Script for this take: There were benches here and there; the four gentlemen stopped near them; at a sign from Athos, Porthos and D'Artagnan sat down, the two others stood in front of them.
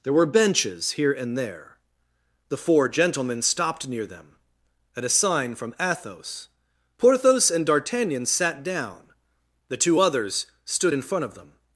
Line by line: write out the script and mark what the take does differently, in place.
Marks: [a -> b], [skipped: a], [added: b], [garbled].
There were benches here and there; the four gentlemen stopped near them; at a sign from Athos, Porthos and D'Artagnan sat down, the two others stood in front of them.